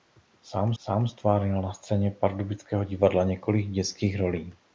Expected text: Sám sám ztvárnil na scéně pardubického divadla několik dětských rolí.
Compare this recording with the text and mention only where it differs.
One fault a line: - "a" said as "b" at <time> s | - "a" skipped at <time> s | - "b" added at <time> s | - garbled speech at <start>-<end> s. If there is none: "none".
none